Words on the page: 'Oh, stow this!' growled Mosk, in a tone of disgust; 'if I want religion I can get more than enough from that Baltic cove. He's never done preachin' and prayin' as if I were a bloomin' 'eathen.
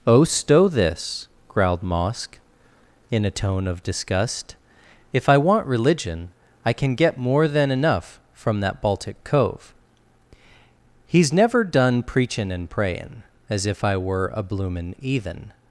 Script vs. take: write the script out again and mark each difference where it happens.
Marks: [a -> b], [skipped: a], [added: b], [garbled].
'Oh, stow this!' growled Mosk, in a tone of disgust; 'if I want religion I can get more than enough from that Baltic cove. He's never done preachin' and prayin' as if I were a bloomin' 'eathen.